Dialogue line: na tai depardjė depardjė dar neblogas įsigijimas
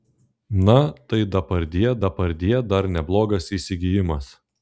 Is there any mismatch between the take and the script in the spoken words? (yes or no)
no